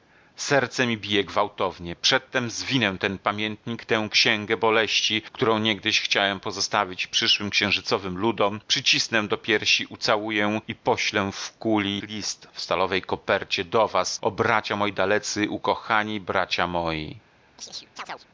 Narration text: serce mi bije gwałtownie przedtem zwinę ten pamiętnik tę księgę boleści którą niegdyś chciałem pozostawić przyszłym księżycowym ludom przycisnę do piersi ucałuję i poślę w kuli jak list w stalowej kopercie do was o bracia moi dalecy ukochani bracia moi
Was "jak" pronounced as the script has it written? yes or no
no